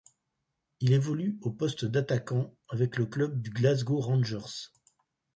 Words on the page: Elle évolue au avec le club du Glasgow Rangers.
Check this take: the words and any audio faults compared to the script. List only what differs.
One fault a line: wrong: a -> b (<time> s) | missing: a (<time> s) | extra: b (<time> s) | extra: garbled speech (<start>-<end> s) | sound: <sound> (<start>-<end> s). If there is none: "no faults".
wrong: Elle -> Il (0.8 s)
extra: poste d'attaquant (1.5 s)